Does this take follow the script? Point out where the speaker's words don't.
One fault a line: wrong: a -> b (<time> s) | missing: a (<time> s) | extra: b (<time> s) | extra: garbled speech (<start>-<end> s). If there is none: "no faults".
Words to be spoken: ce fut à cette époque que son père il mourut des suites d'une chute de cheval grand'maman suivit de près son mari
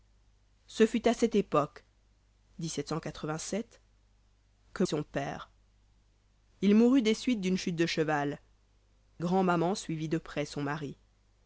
no faults